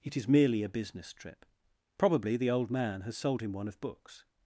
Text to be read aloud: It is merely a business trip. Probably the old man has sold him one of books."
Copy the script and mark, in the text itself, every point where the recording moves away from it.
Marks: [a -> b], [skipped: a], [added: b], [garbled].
It is merely a business trip. Probably the old man has sold him one of books."